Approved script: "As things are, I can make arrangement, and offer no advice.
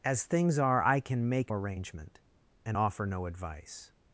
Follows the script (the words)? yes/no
yes